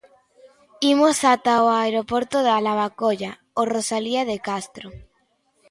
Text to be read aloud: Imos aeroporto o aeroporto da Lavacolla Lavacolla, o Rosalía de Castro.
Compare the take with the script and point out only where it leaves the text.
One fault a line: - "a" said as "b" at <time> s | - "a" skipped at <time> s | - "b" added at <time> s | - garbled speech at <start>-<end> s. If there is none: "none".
- "aeroporto" said as "ata" at 1.3 s
- "Lavacolla" skipped at 3.3 s